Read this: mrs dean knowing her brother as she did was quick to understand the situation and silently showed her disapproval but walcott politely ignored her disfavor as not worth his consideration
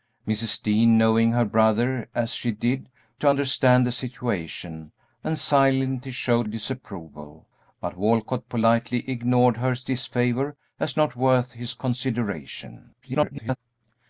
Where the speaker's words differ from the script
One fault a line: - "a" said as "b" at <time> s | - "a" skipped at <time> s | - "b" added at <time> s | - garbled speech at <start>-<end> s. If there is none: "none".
- "was quick" skipped at 2.9 s
- "her" skipped at 6.5 s
- garbled speech at 13.0-13.6 s